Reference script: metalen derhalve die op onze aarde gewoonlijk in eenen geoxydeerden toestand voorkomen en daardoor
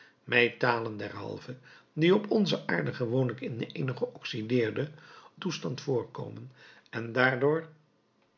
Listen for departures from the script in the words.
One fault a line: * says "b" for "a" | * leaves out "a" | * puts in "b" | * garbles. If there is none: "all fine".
all fine